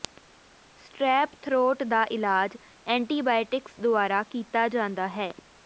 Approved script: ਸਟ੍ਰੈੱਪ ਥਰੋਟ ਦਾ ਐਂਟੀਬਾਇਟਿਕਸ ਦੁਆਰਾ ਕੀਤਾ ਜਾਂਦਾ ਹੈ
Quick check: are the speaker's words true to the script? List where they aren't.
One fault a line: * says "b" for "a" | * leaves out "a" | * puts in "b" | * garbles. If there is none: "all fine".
* puts in "ਇਲਾਜ"